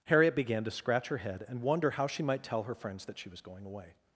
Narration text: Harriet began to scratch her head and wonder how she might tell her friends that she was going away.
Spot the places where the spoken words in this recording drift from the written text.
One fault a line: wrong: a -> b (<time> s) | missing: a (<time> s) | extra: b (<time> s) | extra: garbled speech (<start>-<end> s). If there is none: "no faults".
no faults